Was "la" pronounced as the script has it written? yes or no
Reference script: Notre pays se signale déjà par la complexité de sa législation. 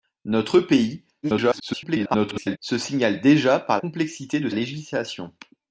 no